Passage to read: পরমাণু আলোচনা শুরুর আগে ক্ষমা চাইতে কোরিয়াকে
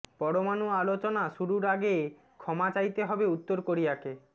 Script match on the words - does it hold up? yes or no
no